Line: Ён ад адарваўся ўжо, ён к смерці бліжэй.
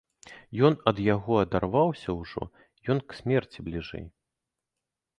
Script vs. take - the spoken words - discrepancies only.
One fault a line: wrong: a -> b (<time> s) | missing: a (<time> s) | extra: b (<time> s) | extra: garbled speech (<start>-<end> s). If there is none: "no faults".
extra: яго (1.1 s)